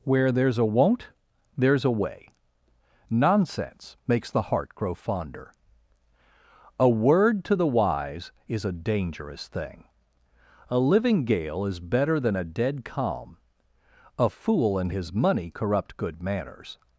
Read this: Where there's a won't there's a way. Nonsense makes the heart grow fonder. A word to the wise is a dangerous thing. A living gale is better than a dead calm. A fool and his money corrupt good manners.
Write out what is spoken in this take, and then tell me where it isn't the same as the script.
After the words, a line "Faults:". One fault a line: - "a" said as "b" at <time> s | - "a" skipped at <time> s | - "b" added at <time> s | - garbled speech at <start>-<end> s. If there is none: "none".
Where there's a won't there's a way. Nonsense makes the heart grow fonder. A word to the wise is a dangerous thing. A living gale is better than a dead calm. A fool and his money corrupt good manners.
Faults:
none